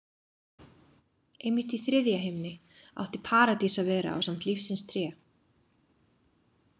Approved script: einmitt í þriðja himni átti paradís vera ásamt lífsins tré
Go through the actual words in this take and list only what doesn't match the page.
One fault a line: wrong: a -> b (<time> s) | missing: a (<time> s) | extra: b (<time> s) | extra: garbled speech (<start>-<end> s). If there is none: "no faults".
extra: að (3.8 s)